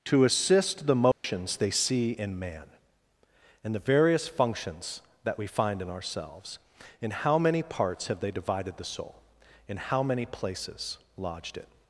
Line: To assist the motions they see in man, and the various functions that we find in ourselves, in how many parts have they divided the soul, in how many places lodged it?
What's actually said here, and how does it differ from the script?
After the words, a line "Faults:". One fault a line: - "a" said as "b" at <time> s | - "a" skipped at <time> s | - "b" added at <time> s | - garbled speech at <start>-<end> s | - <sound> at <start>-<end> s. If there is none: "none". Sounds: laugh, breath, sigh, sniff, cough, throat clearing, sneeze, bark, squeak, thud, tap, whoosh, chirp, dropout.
To assist the motions they see in man, and the various functions that we find in ourselves, in how many parts have they divided the soul, in how many places lodged it?
Faults:
- dropout at 1.1-1.2 s